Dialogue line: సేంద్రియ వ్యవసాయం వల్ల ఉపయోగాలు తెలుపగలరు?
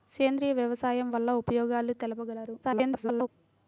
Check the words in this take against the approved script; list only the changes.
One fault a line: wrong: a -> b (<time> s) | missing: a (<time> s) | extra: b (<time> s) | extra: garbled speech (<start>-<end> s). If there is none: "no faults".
extra: garbled speech (2.6-3.3 s)